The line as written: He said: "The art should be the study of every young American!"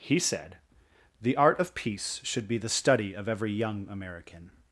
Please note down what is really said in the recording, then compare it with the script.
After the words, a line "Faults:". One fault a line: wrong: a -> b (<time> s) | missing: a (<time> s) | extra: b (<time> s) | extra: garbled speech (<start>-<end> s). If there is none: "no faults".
He said: "The art of Peace should be the study of every young American!"
Faults:
extra: of Peace (1.6 s)